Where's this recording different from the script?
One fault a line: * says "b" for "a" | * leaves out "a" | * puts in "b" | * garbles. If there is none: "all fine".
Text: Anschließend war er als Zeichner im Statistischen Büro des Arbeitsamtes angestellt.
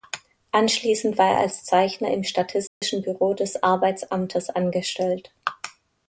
all fine